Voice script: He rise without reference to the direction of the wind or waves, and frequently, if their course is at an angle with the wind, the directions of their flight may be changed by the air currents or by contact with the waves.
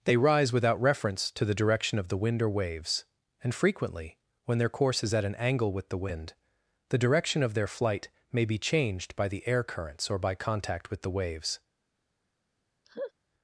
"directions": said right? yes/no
no